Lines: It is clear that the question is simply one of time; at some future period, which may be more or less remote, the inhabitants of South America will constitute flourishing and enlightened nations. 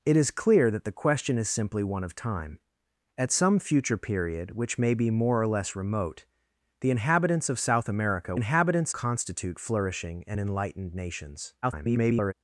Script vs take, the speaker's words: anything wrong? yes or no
yes